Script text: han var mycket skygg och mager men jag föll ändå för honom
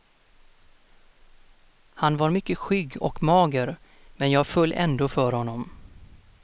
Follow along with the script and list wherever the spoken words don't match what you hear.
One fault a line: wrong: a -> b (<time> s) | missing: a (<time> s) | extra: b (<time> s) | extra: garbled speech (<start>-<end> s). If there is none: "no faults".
no faults